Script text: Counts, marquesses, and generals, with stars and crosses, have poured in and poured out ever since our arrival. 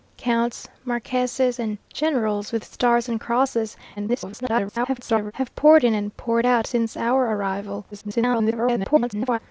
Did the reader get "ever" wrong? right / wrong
wrong